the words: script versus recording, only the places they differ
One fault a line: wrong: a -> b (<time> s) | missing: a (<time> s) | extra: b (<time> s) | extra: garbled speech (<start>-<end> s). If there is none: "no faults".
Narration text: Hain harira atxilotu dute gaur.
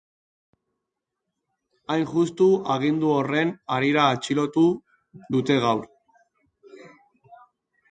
extra: justu agindu horren (2.1 s)